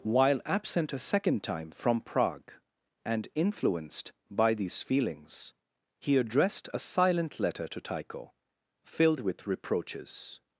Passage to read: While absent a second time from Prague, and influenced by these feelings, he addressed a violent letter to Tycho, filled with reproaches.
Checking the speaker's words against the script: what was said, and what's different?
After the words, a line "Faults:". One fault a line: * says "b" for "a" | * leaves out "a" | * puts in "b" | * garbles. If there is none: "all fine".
While absent a second time from Prague, and influenced by these feelings, he addressed a silent letter to Tycho, filled with reproaches.
Faults:
* says "silent" for "violent"